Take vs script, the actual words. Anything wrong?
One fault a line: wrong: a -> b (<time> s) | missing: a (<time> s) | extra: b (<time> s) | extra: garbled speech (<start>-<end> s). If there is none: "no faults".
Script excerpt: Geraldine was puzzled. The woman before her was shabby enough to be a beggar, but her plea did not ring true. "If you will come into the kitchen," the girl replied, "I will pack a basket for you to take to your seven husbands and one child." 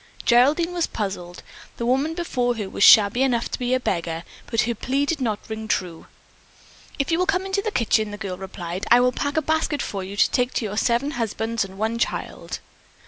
no faults